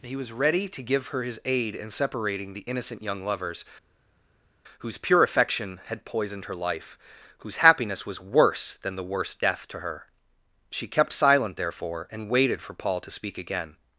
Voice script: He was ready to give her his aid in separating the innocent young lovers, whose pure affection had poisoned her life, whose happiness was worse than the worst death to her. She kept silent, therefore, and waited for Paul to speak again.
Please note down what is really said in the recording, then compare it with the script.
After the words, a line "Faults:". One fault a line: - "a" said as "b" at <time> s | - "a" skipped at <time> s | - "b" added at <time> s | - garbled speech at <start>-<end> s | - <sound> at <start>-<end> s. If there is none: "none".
He was ready to give her his aid in separating the innocent young lovers, whose pure affection had poisoned her life, whose happiness was worse than the worst death to her. She kept silent, therefore, and waited for Paul to speak again.
Faults:
none